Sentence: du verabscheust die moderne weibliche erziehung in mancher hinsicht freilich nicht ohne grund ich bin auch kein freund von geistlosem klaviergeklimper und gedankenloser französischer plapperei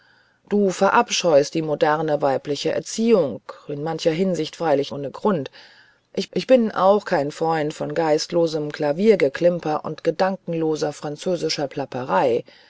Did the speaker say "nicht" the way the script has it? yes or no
no